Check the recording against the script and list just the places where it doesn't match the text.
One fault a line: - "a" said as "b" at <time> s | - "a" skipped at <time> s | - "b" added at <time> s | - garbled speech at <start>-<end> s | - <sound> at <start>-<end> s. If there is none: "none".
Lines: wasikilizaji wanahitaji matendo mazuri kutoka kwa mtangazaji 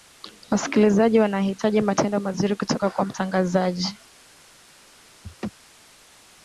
- laugh at 5.2-5.5 s